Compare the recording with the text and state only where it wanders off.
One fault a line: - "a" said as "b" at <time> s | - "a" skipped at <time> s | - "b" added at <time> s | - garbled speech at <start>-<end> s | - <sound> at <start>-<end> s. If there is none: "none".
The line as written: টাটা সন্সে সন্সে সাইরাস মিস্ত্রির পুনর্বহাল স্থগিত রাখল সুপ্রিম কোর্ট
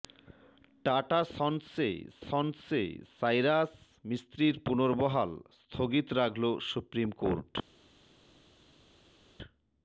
none